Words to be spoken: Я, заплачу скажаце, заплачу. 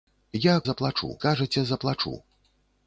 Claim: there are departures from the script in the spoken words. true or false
false